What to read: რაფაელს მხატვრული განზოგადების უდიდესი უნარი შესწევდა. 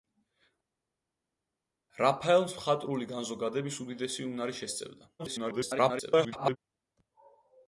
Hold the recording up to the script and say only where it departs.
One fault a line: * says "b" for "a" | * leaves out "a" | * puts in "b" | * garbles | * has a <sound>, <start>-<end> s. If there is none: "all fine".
* garbles